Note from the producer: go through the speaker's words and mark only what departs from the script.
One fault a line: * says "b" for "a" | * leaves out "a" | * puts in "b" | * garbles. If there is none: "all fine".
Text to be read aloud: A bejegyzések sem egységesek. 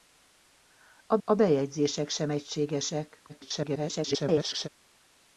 * puts in "a"
* garbles